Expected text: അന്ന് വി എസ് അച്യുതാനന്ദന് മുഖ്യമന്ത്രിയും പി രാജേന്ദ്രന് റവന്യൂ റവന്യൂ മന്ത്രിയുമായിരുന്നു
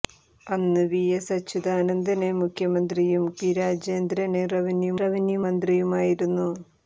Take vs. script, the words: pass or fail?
pass